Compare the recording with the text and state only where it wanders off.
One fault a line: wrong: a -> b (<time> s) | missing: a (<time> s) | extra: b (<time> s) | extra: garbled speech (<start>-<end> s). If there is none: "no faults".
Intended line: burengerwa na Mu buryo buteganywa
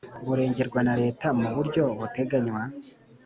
extra: Leta (1.0 s)